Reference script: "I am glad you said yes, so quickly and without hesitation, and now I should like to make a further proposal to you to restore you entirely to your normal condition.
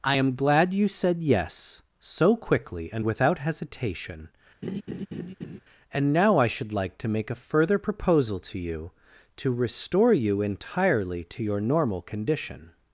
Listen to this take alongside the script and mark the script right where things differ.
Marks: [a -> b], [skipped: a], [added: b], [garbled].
"I am glad you said yes, so quickly and without hesitation, and now I should like to make a further proposal to you to restore you entirely to your normal condition.